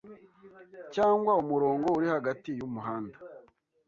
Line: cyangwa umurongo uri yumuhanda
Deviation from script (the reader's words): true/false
true